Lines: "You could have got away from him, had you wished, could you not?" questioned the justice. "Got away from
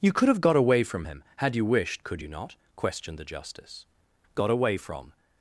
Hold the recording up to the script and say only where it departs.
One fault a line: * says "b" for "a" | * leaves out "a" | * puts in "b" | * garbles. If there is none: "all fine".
all fine